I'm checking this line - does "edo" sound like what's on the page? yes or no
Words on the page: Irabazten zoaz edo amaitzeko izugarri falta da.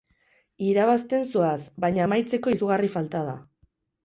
no